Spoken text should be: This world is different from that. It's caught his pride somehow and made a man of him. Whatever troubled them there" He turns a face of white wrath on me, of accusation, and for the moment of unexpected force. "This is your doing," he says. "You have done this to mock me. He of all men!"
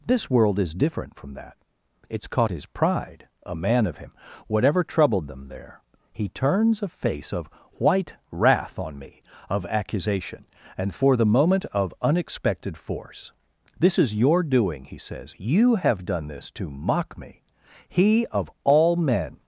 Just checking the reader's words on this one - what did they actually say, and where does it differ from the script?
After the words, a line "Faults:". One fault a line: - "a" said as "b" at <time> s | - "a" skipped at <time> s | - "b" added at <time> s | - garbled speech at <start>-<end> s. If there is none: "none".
This world is different from that. It's caught his pride a man of him. Whatever troubled them there" He turns a face of white wrath on me, of accusation, and for the moment of unexpected force. "This is your doing," he says. "You have done this to mock me. He of all men!"
Faults:
- "somehow and made" skipped at 3.3 s